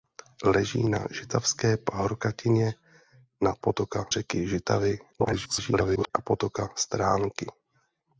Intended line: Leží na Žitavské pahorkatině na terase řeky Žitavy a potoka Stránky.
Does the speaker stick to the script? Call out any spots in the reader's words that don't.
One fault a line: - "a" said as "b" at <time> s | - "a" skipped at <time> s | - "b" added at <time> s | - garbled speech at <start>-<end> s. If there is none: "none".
- "terase" said as "potoka" at 3.6 s
- garbled speech at 5.1-6.1 s